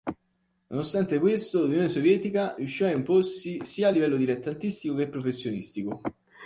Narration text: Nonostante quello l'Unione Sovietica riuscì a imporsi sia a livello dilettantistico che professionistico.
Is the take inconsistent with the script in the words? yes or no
yes